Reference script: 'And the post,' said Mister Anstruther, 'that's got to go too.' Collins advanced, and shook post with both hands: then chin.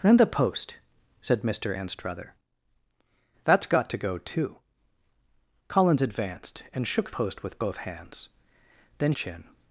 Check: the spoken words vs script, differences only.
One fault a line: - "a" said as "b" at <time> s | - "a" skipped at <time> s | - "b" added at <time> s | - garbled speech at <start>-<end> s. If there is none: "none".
none